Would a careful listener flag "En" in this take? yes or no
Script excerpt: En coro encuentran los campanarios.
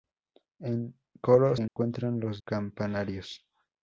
no